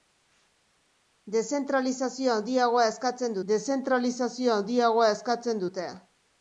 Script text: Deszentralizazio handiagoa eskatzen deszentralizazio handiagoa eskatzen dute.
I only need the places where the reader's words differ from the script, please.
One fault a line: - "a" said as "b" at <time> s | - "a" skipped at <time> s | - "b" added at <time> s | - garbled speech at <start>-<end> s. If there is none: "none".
none